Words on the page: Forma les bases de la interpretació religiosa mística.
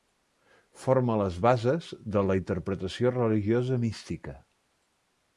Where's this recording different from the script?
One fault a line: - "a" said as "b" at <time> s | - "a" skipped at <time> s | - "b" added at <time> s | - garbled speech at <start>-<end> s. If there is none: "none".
none